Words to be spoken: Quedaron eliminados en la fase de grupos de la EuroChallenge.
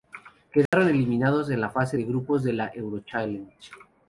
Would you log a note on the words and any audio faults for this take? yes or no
yes